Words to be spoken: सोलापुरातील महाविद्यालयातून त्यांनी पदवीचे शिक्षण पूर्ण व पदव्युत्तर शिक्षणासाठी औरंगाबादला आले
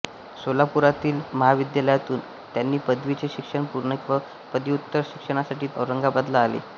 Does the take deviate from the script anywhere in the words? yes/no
no